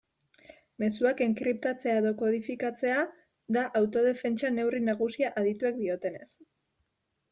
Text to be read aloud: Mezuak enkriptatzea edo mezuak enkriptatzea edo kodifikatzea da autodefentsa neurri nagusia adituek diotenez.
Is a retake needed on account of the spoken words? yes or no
yes